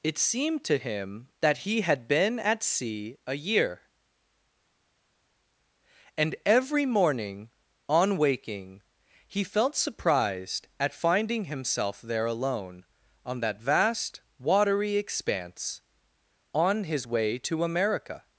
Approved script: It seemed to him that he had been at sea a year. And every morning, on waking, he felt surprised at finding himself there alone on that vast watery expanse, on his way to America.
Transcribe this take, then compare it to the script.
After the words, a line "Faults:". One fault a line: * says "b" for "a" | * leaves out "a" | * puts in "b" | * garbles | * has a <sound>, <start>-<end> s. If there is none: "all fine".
It seemed to him that he had been at sea a year. And every morning, on waking, he felt surprised at finding himself there alone on that vast watery expanse, on his way to America.
Faults:
all fine